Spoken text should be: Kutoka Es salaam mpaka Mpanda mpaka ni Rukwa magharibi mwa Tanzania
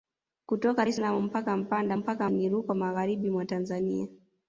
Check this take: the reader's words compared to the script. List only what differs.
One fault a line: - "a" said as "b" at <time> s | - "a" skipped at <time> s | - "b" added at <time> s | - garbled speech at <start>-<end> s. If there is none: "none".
none